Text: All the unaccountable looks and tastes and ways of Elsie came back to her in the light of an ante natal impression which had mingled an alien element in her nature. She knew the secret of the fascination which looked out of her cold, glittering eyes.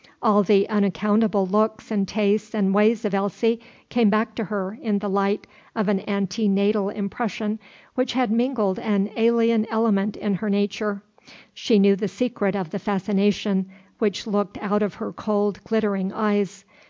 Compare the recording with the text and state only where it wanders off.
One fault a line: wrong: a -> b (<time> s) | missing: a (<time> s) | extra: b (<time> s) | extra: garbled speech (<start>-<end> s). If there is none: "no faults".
no faults